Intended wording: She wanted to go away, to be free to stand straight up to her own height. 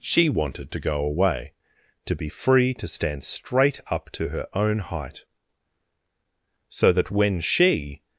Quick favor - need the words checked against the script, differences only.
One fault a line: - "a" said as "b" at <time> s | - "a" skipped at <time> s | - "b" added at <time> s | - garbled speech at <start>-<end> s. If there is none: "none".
- "So that when she" added at 6.7 s